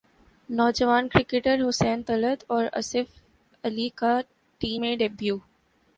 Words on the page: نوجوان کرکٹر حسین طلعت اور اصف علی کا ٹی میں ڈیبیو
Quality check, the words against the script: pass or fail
pass